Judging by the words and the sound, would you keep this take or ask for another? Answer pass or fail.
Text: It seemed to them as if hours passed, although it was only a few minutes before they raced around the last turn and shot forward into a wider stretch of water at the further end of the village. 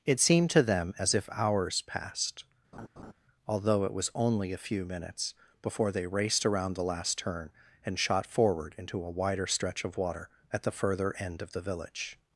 fail